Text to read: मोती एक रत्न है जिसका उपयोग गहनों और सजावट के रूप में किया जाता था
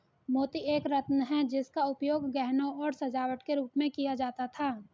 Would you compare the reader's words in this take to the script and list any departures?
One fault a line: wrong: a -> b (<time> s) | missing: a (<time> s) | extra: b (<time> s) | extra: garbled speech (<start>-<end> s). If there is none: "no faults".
no faults